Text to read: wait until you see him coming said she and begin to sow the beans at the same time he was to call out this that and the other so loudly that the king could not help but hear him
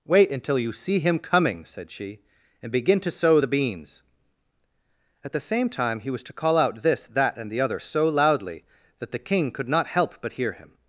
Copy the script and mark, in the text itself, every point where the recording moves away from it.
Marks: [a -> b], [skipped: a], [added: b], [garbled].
wait until you see him coming said she and begin to sow the beans at the same time he was to call out this that and the other so loudly that the king could not help but hear him